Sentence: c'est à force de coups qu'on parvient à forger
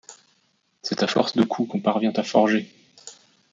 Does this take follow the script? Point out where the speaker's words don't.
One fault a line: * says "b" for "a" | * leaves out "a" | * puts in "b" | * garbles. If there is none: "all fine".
all fine